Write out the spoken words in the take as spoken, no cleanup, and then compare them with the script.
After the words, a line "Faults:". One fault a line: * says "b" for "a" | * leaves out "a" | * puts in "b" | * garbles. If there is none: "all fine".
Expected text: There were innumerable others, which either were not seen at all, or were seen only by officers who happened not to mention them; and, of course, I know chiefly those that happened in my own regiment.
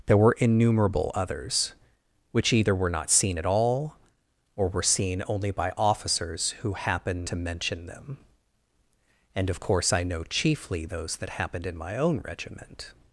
There were innumerable others, which either were not seen at all, or were seen only by officers who happened to mention them; and, of course, I know chiefly those that happened in my own regiment.
Faults:
* leaves out "not"